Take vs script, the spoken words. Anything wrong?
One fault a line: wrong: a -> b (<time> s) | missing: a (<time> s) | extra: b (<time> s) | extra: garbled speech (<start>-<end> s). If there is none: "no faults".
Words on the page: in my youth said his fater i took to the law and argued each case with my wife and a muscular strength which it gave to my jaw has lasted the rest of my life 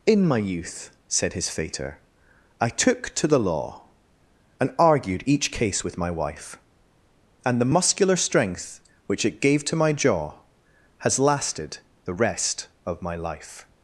wrong: a -> the (7.6 s)